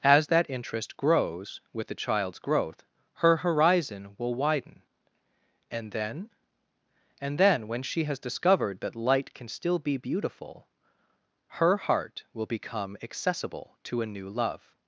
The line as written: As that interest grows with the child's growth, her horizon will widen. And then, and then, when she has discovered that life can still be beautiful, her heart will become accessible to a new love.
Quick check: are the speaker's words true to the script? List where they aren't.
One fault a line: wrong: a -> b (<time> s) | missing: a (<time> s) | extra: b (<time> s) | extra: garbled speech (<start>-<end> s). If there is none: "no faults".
wrong: life -> light (8.9 s)